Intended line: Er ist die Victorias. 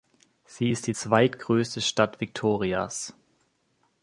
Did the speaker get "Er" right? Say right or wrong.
wrong